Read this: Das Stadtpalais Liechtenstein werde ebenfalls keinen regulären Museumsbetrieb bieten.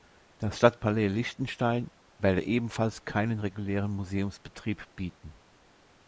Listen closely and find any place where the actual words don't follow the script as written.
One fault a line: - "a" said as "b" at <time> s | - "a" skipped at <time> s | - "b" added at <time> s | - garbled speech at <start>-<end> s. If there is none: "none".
none